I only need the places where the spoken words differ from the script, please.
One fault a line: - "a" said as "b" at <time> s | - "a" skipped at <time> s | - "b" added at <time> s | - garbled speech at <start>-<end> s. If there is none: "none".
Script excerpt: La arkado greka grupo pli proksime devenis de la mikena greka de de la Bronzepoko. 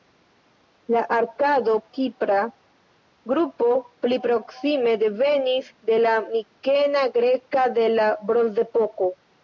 - "greka" said as "kipra" at 2.0 s
- "de" skipped at 8.0 s